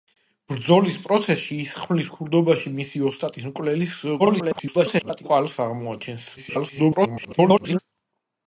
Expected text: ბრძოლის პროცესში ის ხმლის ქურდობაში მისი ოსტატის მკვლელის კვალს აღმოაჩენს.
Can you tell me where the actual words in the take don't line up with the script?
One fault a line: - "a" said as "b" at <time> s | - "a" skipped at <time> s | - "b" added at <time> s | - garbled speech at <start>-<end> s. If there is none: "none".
- garbled speech at 4.2-5.2 s
- garbled speech at 6.4-7.8 s